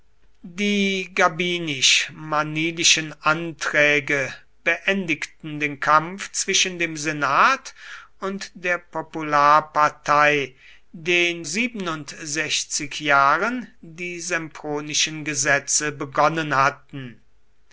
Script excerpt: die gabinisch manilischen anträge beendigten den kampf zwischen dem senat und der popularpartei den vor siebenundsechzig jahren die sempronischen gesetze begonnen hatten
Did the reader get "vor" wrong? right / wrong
wrong